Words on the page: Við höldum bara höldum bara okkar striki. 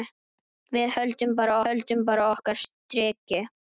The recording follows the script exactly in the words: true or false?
true